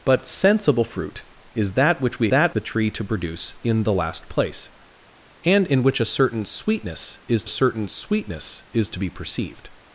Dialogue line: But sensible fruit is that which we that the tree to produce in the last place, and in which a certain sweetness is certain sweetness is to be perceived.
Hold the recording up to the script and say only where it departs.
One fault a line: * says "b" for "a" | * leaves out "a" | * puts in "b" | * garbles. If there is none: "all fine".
all fine